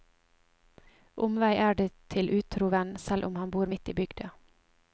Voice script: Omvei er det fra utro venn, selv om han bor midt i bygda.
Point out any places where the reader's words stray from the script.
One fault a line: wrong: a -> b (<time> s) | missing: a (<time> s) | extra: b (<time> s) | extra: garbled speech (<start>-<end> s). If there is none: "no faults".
wrong: fra -> til (2.1 s)